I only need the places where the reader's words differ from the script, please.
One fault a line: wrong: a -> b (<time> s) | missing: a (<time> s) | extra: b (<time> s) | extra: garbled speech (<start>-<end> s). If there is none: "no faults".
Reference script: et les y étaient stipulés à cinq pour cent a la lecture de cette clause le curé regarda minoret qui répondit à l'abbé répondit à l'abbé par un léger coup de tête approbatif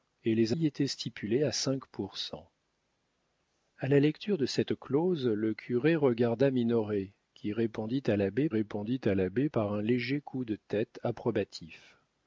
no faults